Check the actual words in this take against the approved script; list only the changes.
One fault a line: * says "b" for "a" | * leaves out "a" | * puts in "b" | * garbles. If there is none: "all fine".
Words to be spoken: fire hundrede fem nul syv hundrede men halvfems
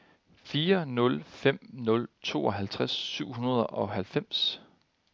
* says "nul" for "hundrede"
* puts in "tooghalvtreds"
* says "og" for "men"